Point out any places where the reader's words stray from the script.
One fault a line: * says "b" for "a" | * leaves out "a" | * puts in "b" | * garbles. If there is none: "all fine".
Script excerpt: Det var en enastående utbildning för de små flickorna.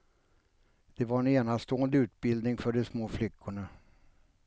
all fine